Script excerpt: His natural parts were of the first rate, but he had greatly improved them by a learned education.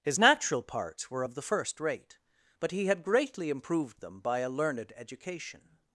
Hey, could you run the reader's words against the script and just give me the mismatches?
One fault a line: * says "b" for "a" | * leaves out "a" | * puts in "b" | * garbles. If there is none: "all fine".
all fine